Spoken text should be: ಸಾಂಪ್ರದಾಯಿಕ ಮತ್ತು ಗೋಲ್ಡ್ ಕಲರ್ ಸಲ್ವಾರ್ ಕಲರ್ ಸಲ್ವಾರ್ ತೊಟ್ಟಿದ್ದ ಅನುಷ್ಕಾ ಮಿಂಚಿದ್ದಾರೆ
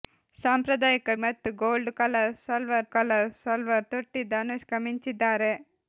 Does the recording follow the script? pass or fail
pass